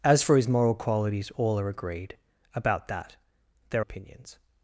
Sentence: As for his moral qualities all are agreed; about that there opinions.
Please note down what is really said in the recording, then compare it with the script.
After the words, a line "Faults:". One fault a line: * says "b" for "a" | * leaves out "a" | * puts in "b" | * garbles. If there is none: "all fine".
As for his moral qualities all are agreed; about that there opinions.
Faults:
all fine